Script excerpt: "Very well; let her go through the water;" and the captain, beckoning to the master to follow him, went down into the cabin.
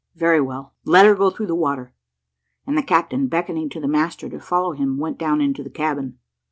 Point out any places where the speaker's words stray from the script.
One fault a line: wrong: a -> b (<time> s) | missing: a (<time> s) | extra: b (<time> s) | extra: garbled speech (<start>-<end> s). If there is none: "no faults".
no faults